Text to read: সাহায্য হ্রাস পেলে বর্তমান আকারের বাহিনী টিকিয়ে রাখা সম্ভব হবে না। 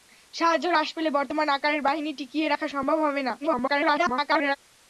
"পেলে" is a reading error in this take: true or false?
false